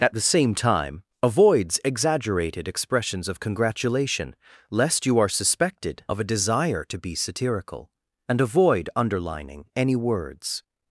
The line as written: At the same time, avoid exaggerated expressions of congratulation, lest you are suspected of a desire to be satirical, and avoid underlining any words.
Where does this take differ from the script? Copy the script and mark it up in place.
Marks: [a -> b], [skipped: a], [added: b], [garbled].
At the same time, [avoid -> avoids] exaggerated expressions of congratulation, lest you are suspected of a desire to be satirical, and avoid underlining any words.